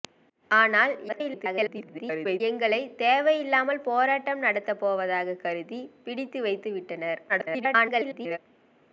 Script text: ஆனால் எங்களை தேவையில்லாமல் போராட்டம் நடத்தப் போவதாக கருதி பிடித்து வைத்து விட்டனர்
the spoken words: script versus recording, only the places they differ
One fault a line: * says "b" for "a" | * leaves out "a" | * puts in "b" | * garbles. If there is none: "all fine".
* garbles
* garbles